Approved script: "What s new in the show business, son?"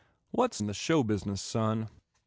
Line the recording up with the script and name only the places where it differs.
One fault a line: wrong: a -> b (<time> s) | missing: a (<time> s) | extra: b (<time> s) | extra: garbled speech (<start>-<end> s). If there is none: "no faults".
missing: new (0.6 s)